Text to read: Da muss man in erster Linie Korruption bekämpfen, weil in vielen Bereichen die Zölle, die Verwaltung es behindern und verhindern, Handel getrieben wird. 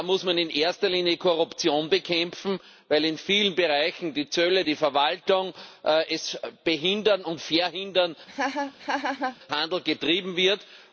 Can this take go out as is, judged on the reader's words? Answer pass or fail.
pass